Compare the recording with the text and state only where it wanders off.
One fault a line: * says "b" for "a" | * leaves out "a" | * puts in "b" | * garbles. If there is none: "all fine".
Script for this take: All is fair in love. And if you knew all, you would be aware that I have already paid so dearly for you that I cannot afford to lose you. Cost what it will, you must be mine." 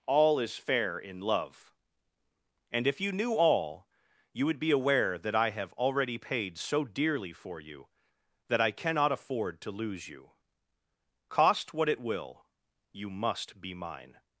all fine